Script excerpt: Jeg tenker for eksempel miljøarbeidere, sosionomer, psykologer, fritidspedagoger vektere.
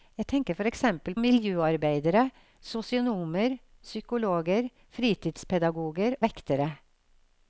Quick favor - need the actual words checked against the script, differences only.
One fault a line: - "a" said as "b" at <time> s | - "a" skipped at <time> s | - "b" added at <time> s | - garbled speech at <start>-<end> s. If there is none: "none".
none